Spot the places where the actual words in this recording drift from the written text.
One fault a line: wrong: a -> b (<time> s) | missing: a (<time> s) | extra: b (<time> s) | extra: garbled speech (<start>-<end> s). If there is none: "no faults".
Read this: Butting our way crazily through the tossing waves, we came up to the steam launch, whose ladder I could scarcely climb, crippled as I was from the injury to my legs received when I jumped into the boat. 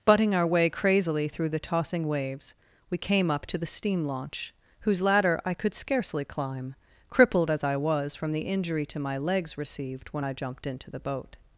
no faults